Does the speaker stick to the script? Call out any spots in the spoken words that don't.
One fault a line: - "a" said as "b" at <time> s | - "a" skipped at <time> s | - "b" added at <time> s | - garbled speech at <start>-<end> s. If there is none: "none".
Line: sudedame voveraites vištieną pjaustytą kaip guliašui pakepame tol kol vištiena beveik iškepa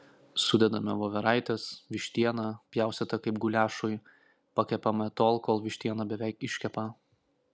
none